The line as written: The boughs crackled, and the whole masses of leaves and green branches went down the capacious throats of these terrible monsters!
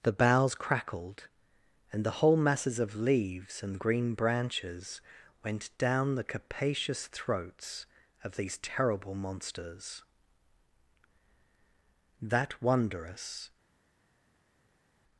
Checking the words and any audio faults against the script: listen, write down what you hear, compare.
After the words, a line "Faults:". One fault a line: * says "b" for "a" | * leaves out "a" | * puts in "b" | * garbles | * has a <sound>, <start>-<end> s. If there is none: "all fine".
The boughs crackled, and the whole masses of leaves and green branches went down the capacious throats of these terrible monsters! That wondrous
Faults:
* puts in "That wondrous"